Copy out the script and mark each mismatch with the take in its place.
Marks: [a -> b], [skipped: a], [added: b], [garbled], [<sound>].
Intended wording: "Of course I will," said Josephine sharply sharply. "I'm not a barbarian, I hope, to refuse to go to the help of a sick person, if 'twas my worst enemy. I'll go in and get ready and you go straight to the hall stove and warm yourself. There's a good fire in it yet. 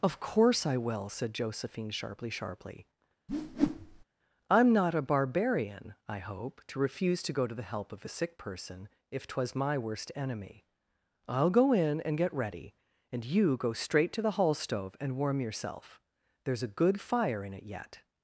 "Of course I will," said Josephine sharply sharply. [whoosh] "I'm not a barbarian, I hope, to refuse to go to the help of a sick person, if 'twas my worst enemy. I'll go in and get ready and you go straight to the hall stove and warm yourself. There's a good fire in it yet.